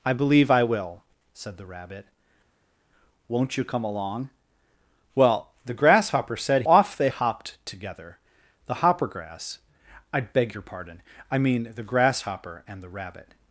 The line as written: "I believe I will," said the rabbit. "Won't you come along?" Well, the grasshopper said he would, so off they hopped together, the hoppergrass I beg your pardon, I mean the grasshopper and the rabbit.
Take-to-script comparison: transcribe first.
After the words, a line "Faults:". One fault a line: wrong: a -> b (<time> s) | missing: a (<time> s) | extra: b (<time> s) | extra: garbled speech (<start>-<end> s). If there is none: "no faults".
"I believe I will," said the rabbit. "Won't you come along?" Well, the grasshopper said off they hopped together, the hoppergrass I beg your pardon, I mean the grasshopper and the rabbit.
Faults:
missing: he would so (6.6 s)